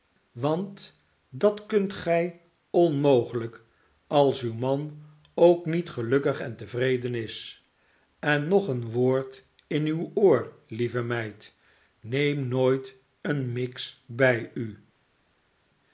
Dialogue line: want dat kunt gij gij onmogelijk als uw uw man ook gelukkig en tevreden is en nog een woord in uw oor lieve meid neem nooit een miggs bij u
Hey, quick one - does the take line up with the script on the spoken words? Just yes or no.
no